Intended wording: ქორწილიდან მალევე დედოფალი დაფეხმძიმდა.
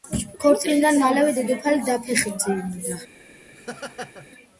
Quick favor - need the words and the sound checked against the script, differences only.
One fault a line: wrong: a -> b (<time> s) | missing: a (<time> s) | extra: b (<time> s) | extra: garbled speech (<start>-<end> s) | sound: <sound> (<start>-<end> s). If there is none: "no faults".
sound: laugh (3.5-4.3 s)